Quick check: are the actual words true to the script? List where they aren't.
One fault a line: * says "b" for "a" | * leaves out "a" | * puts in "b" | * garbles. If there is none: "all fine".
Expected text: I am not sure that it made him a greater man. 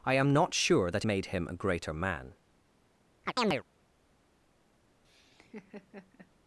* leaves out "it"